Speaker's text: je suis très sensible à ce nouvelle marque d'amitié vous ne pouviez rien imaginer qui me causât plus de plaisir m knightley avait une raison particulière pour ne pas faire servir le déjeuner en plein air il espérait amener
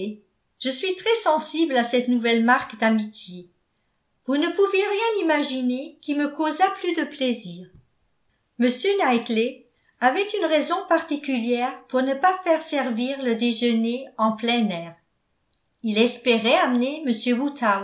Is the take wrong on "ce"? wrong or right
wrong